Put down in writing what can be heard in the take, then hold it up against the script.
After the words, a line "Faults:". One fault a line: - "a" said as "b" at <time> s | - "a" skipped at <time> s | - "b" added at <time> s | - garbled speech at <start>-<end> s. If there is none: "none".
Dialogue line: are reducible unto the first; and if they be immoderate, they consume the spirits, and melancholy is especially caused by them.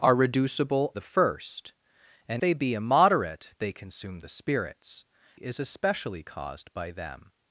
are reducible the first; and they be immoderate, they consume the spirits, is especially caused by them.
Faults:
- "unto" skipped at 0.9 s
- "if" skipped at 2.4 s
- "and melancholy" skipped at 5.0 s